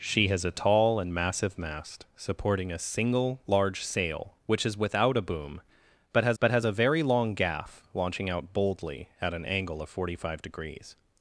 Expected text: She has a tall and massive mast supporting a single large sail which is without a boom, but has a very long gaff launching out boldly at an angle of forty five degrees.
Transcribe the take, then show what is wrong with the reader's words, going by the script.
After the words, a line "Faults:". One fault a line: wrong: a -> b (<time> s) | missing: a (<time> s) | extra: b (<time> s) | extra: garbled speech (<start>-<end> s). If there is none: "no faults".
She has a tall and massive mast supporting a single large sail which is without a boom, but has but has a very long gaff launching out boldly at an angle of forty five degrees.
Faults:
extra: but has (6.4 s)